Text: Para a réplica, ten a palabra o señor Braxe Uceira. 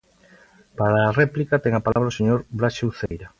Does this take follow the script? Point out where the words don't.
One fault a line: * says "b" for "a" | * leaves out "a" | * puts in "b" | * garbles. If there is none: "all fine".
all fine